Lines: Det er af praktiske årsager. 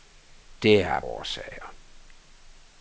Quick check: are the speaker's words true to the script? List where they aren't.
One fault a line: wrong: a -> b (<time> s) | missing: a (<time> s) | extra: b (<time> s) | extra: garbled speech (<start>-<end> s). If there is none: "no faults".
missing: praktiske (1.0 s)